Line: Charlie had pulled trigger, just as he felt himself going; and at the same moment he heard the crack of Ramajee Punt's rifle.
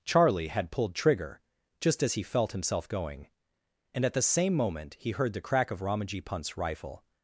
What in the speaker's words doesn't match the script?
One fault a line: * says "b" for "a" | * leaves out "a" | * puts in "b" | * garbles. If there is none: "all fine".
all fine